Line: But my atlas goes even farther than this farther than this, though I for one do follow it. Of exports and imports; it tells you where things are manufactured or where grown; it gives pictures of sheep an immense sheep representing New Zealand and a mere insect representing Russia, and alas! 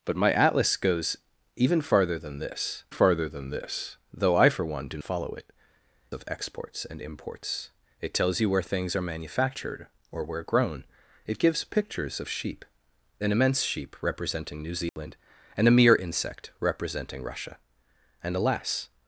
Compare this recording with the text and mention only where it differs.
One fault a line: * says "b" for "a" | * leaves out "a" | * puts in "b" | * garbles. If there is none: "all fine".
all fine